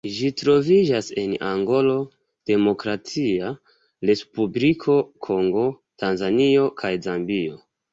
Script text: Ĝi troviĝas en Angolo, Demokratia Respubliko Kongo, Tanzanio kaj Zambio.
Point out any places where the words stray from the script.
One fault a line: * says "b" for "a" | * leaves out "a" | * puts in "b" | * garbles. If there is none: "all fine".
all fine